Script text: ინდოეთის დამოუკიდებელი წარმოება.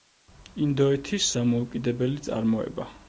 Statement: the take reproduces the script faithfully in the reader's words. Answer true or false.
true